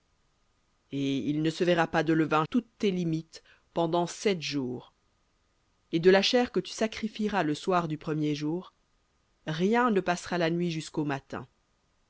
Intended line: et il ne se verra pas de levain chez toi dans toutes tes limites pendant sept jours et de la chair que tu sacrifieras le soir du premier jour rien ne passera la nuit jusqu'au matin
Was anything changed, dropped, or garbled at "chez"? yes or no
yes